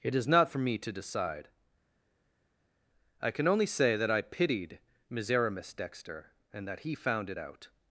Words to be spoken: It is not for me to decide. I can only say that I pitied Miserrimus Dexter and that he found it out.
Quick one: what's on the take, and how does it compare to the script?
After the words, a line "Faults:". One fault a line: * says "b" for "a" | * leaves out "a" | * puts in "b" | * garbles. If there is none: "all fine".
It is not for me to decide. I can only say that I pitied Miserrimus Dexter and that he found it out.
Faults:
all fine